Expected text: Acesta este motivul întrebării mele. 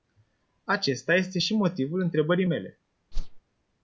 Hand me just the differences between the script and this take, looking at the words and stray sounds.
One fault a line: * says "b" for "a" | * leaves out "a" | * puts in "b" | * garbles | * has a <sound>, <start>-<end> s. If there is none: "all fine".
* puts in "și"
* has a whoosh, 3.1-3.4 s